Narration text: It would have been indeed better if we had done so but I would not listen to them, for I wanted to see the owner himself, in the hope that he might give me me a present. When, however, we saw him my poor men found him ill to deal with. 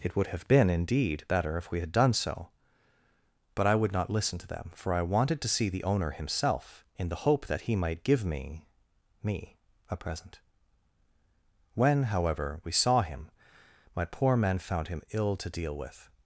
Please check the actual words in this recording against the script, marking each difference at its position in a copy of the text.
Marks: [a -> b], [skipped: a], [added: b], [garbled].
It would have been indeed better if we had done so but I would not listen to them, for I wanted to see the owner himself, in the hope that he might give me me a present. When, however, we saw him my poor men found him ill to deal with.